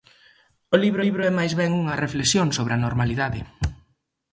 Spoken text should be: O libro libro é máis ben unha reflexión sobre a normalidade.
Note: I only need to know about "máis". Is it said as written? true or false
true